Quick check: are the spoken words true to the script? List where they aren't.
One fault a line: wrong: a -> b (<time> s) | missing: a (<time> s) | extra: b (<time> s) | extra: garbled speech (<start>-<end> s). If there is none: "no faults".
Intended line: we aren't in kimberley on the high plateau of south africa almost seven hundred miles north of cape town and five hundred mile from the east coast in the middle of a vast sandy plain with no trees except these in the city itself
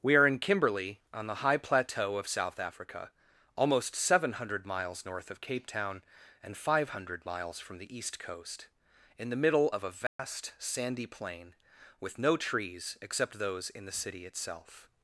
wrong: aren't -> are (0.1 s)
wrong: mile -> miles (7.2 s)
wrong: these -> those (13.4 s)